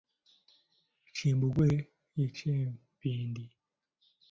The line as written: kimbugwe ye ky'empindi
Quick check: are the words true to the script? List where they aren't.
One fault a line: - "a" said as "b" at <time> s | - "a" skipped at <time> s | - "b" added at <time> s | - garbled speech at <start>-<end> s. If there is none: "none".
none